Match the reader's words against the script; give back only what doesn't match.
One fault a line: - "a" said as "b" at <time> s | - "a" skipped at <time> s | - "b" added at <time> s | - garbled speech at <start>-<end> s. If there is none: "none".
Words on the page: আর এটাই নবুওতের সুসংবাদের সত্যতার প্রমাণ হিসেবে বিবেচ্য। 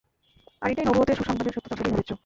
- "প্রমাণ" skipped at 1.8 s